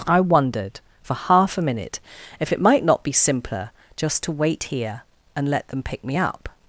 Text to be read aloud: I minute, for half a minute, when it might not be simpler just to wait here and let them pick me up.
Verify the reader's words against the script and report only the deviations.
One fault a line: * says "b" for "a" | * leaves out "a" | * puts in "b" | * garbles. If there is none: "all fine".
* says "wondered" for "minute"
* says "if" for "when"